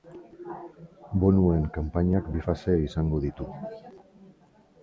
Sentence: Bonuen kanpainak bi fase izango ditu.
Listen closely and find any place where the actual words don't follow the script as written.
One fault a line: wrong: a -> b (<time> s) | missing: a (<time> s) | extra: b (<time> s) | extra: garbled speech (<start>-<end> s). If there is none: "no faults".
no faults